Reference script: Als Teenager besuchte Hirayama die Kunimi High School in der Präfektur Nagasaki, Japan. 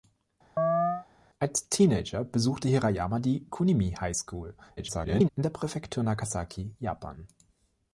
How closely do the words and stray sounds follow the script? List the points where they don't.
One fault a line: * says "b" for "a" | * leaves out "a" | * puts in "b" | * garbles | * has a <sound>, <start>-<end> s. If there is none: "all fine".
* has a chirp, 0.6-1.1 s
* garbles